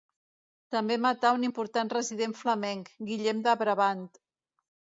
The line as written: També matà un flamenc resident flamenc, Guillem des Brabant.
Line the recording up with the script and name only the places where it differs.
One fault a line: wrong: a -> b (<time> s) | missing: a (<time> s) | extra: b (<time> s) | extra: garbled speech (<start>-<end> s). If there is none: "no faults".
wrong: flamenc -> important (1.5 s)
wrong: des -> de (3.5 s)